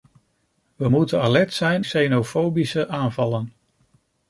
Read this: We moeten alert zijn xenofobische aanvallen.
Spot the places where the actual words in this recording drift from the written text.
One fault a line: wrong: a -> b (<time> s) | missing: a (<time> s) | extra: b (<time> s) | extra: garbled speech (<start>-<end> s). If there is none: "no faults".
no faults